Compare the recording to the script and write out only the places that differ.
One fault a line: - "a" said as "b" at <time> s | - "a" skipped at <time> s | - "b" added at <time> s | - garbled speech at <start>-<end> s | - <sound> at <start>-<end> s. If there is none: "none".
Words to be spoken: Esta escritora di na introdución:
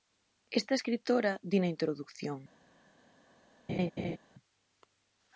- laugh at 3.7-4.2 s